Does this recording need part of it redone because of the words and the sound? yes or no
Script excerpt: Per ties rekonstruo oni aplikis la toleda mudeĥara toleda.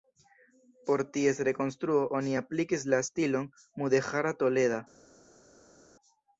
yes